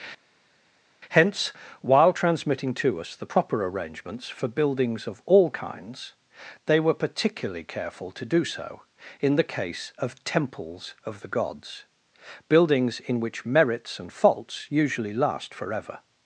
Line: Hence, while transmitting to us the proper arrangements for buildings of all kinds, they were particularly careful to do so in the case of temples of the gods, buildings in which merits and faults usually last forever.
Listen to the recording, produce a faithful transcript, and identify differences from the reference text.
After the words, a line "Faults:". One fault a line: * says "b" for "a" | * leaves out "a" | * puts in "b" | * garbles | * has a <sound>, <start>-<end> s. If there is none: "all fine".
Hence, while transmitting to us the proper arrangements for buildings of all kinds, they were particularly careful to do so in the case of temples of the gods, buildings in which merits and faults usually last forever.
Faults:
all fine